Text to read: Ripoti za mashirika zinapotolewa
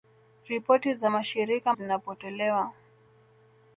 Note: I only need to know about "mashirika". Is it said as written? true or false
true